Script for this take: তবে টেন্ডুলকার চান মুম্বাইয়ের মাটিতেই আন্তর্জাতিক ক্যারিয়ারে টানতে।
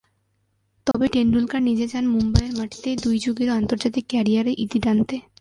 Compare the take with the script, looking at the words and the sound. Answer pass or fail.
fail